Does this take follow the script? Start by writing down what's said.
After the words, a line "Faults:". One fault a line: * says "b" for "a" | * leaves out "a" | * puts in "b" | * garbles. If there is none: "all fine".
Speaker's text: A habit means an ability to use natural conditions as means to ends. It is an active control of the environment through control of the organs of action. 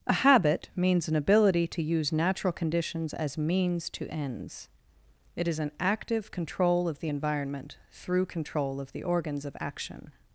A habit means an ability to use natural conditions as means to ends. It is an active control of the environment through control of the organs of action.
Faults:
all fine